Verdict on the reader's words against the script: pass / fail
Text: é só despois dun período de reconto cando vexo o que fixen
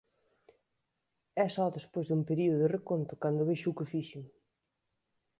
pass